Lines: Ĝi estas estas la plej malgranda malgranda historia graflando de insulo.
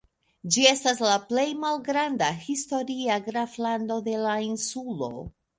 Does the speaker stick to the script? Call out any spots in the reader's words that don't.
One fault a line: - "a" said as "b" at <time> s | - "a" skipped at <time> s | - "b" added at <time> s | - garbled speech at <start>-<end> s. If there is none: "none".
- "estas" skipped at 1.0 s
- "malgranda" skipped at 2.3 s
- "la" added at 4.3 s